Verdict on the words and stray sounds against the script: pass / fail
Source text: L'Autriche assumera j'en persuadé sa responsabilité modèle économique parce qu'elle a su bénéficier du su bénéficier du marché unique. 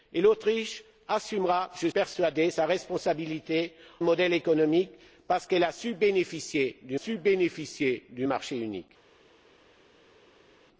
pass